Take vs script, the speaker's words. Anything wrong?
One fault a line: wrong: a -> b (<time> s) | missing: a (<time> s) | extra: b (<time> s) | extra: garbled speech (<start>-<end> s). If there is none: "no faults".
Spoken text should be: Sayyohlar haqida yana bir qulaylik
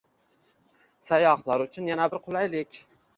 wrong: haqida -> uchun (1.7 s)